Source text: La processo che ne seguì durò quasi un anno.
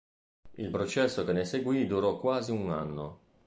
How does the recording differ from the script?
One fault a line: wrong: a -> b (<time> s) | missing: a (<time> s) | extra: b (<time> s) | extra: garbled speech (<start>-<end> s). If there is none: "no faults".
wrong: La -> Il (0.6 s)